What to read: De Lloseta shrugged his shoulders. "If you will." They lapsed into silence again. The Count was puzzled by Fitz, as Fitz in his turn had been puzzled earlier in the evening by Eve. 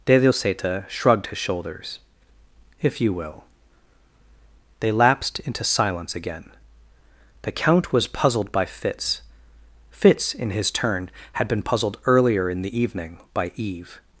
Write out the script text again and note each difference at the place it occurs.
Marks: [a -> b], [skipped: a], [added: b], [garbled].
De Lloseta shrugged his shoulders. "If you will." They lapsed into silence again. The Count was puzzled by Fitz, [skipped: as] Fitz in his turn had been puzzled earlier in the evening by Eve.